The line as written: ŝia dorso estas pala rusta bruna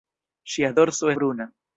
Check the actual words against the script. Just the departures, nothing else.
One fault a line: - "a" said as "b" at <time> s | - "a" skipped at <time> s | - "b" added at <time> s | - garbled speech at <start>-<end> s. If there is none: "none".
- "estas pala rusta" skipped at 1.1 s